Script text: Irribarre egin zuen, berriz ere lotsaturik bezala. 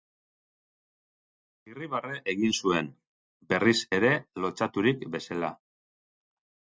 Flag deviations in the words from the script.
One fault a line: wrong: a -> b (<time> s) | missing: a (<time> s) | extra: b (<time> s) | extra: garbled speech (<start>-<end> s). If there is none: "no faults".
no faults